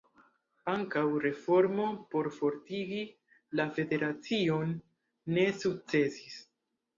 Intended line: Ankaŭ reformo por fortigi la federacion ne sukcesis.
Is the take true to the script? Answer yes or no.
yes